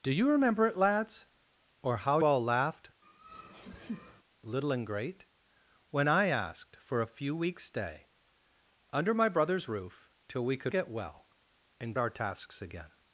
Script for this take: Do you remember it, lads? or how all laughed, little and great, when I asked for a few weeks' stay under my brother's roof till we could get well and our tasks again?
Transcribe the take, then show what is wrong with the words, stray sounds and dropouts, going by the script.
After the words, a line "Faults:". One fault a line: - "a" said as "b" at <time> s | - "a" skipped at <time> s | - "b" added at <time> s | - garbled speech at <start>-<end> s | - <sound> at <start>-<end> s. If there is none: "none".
Do you remember it, lads? or how all laughed, little and great, when I asked for a few weeks' stay under my brother's roof till we could get well and our tasks again?
Faults:
- laugh at 3.0-4.2 s